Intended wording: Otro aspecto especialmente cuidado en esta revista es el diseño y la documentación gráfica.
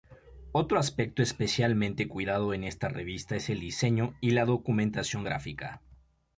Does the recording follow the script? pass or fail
pass